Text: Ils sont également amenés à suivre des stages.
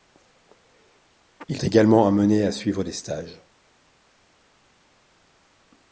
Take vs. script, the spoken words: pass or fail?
fail